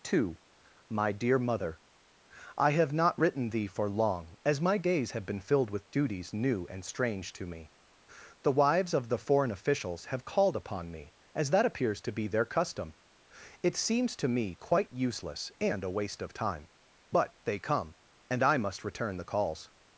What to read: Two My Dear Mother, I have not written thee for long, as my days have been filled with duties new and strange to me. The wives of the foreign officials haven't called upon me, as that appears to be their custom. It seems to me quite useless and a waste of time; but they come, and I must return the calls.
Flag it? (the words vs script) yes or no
yes